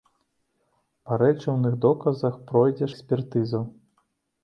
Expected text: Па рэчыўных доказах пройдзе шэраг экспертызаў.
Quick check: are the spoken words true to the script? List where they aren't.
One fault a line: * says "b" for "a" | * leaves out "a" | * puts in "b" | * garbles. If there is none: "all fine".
* leaves out "шэраг"